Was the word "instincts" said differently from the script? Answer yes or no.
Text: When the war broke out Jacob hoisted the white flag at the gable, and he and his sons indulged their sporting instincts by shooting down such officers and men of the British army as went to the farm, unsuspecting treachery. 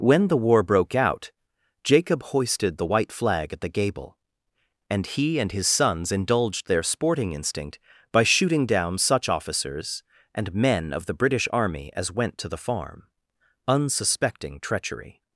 yes